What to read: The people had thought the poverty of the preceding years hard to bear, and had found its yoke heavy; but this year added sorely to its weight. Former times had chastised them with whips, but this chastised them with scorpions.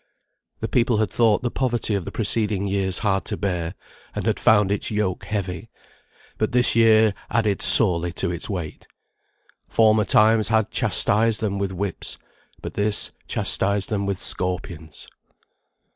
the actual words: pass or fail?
pass